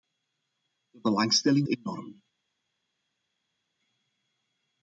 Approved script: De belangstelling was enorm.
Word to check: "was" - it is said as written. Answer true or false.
false